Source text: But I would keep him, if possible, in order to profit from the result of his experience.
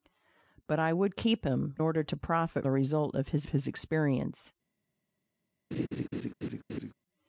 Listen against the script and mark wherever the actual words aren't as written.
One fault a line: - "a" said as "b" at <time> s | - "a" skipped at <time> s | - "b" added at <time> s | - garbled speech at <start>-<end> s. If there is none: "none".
- "if possible in" skipped at 1.8 s
- "from" skipped at 2.7 s
- "his" added at 3.5 s